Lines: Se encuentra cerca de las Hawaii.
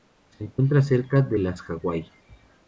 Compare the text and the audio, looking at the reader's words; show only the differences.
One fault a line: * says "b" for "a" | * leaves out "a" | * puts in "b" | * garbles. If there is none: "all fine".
all fine